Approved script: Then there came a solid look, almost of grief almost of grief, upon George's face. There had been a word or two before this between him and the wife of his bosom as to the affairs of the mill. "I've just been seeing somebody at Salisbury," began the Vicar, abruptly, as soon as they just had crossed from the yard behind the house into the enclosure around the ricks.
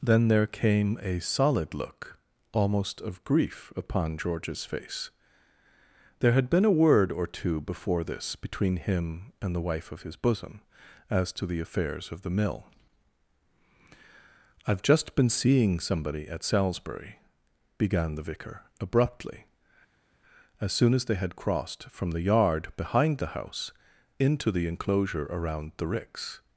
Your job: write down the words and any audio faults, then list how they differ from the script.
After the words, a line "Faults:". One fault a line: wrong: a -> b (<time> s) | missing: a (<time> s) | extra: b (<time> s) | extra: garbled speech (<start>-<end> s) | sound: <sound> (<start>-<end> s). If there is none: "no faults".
Then there came a solid look, almost of grief, upon George's face. There had been a word or two before this between him and the wife of his bosom as to the affairs of the mill. "I've just been seeing somebody at Salisbury," began the Vicar, abruptly, as soon as they had crossed from the yard behind the house into the enclosure around the ricks.
Faults:
missing: almost of grief (3.7 s)
missing: just (21.2 s)